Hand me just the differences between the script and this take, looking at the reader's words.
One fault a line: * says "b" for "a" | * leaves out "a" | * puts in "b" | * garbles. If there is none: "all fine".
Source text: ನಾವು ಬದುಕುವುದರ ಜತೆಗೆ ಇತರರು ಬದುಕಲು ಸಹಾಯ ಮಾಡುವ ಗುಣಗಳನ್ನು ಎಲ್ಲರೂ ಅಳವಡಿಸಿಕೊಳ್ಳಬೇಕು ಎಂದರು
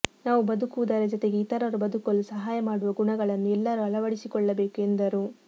all fine